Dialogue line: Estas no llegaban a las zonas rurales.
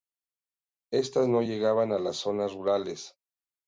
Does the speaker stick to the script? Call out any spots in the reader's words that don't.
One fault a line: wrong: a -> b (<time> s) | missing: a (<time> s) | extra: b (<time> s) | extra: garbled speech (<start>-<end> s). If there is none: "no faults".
no faults